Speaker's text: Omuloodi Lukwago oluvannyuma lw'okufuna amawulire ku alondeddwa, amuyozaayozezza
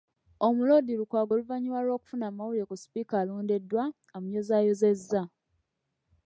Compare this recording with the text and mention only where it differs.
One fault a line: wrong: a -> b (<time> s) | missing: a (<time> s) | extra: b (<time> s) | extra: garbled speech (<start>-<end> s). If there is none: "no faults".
extra: sipiika (2.8 s)